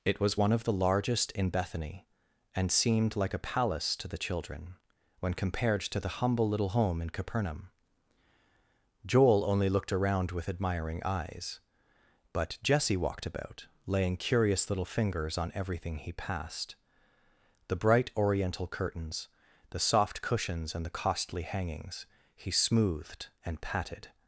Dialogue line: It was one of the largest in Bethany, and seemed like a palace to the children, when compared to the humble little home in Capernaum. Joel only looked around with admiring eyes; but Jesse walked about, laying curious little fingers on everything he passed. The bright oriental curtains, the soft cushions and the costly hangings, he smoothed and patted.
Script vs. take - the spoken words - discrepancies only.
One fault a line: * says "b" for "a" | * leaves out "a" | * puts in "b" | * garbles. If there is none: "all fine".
all fine